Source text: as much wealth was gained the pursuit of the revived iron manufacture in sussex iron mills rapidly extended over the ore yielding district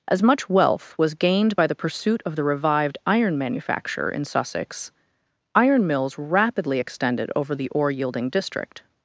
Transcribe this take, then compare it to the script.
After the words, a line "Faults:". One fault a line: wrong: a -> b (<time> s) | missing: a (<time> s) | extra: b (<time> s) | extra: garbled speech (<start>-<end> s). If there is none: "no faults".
as much wealth was gained by the pursuit of the revived iron manufacture in sussex iron mills rapidly extended over the ore yielding district
Faults:
extra: by (1.5 s)